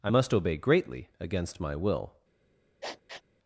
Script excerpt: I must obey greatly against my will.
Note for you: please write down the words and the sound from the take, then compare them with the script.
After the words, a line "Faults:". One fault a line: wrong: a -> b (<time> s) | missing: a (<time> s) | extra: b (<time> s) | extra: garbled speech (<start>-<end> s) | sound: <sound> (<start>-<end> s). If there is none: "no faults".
I must obey greatly against my will.
Faults:
sound: sniff (2.8-3.2 s)